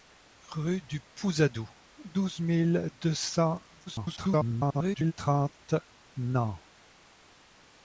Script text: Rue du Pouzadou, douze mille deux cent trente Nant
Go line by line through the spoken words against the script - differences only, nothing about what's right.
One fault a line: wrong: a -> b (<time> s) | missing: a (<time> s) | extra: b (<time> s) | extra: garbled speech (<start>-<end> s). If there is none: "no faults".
extra: garbled speech (3.9-5.1 s)